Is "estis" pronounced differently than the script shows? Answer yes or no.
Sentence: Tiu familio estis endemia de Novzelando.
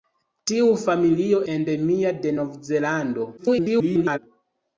yes